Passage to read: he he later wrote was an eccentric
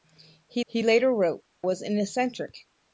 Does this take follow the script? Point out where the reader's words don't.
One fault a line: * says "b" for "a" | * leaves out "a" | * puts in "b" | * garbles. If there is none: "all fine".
all fine